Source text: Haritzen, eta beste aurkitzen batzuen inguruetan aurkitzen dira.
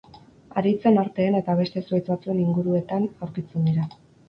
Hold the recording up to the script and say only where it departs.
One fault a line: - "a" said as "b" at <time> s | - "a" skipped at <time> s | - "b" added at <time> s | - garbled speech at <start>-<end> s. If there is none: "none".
- "arteen" added at 1.0 s
- "aurkitzen" said as "zuhaitz" at 1.9 s